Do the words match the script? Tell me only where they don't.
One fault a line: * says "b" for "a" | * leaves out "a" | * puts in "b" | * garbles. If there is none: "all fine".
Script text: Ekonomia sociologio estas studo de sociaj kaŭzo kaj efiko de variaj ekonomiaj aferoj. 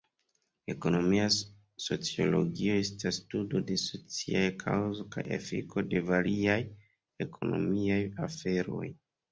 all fine